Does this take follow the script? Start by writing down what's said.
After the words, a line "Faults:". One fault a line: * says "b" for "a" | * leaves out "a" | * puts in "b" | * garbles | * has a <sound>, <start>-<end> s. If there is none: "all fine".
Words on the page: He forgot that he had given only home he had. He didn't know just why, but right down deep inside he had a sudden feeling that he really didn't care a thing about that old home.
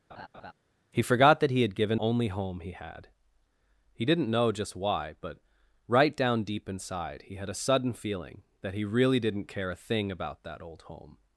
He forgot that he had given only home he had. He didn't know just why, but right down deep inside he had a sudden feeling that he really didn't care a thing about that old home.
Faults:
* has a laugh, 0.1-0.5 s